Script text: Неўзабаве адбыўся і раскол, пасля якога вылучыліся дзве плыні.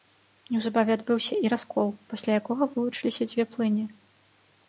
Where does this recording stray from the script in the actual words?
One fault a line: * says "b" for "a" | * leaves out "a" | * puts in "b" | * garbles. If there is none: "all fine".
all fine